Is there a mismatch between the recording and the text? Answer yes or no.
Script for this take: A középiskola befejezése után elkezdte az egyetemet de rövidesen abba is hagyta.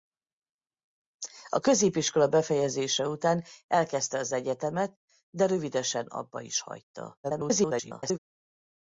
yes